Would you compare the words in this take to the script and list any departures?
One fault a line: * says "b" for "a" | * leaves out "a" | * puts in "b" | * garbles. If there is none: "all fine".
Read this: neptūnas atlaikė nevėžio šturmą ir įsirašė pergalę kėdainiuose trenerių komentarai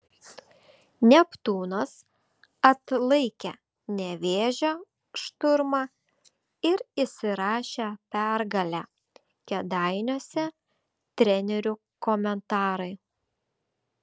all fine